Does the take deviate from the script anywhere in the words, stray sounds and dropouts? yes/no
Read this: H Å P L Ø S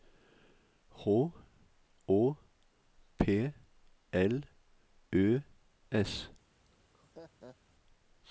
yes